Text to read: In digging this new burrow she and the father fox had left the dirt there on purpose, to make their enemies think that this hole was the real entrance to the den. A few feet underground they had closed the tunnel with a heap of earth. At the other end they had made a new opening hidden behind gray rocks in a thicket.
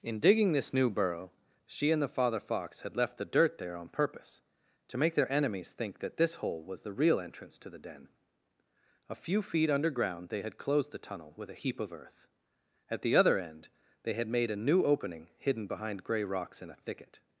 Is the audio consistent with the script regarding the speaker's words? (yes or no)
yes